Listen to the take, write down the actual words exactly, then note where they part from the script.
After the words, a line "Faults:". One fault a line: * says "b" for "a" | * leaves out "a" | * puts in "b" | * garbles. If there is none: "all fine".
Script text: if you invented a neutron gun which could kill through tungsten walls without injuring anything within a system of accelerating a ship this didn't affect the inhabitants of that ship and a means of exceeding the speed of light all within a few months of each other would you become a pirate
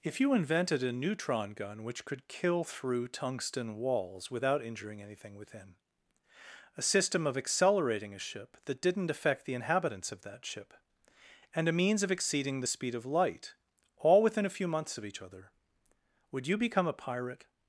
if you invented a neutron gun which could kill through tungsten walls without injuring anything within a system of accelerating a ship that didn't affect the inhabitants of that ship and a means of exceeding the speed of light all within a few months of each other would you become a pirate
Faults:
* says "that" for "this"